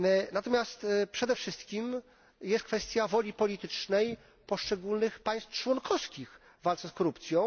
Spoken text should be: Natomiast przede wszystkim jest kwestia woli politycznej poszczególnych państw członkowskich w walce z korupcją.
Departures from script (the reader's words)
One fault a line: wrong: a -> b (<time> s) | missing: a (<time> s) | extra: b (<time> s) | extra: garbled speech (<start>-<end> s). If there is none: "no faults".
no faults